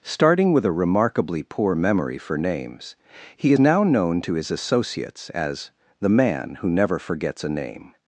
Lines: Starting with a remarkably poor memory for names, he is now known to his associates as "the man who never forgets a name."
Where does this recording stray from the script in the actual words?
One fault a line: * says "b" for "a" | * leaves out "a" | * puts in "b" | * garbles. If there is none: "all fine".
* leaves out "is"